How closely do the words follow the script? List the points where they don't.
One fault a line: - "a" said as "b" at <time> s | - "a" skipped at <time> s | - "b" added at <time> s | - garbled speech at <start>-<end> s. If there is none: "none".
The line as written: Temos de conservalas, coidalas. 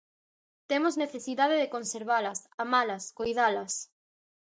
- "necesidade" added at 1.0 s
- "amalas" added at 2.6 s